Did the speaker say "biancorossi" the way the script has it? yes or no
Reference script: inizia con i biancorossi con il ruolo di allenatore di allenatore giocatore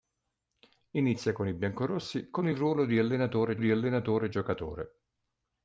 yes